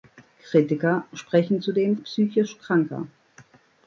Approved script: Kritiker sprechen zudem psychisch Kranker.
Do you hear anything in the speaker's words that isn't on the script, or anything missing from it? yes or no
no